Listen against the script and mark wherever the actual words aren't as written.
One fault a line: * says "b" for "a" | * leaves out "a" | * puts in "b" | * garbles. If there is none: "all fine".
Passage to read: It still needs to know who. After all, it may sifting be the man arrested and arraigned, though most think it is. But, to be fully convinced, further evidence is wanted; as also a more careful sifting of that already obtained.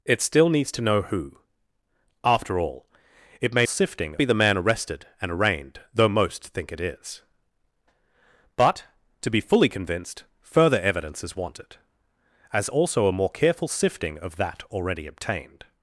all fine